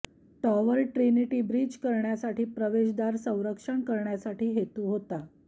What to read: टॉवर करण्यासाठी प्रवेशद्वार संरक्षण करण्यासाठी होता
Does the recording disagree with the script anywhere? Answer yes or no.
yes